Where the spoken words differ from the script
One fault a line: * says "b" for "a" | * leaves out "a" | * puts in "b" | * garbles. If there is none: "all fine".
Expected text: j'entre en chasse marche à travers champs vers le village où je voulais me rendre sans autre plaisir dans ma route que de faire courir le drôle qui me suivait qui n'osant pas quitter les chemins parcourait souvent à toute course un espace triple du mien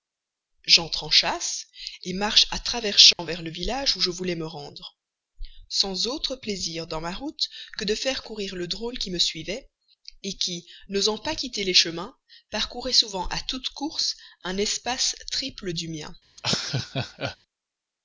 all fine